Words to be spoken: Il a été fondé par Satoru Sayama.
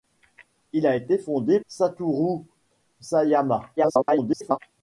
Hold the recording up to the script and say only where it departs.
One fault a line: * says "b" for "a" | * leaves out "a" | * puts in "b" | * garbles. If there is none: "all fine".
* leaves out "par"
* garbles